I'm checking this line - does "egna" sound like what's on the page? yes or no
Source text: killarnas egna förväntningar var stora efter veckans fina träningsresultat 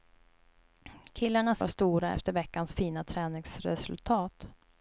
no